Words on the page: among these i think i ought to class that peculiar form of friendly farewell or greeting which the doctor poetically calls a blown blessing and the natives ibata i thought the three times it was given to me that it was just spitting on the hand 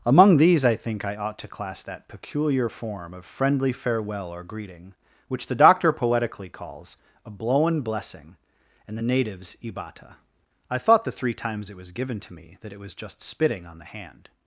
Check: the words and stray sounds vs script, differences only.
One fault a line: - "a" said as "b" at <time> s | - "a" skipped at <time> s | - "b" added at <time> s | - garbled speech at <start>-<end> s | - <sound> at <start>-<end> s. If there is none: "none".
none